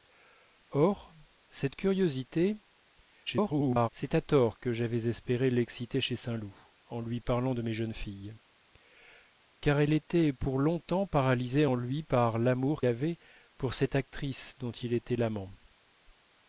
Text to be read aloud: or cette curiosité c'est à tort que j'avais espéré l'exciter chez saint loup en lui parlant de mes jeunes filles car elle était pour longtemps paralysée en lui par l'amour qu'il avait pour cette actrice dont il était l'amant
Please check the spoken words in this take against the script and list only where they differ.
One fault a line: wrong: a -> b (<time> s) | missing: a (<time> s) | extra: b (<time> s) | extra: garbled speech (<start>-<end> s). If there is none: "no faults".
extra: garbled speech (3.3-3.9 s)
missing: qu'il (12.8 s)